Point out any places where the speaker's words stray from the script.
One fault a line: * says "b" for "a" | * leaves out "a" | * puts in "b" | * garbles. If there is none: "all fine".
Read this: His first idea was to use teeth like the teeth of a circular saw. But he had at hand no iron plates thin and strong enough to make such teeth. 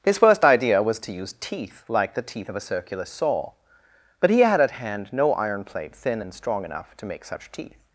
* says "plate" for "plates"